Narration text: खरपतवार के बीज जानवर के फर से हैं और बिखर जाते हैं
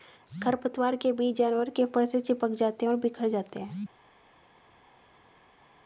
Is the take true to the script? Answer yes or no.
no